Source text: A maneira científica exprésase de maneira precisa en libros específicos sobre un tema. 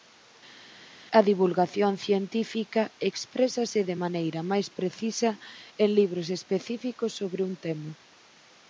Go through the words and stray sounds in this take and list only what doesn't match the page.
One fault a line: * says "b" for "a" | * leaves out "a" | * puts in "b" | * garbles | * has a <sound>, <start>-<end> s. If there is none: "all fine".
* says "divulgación" for "maneira"
* puts in "máis"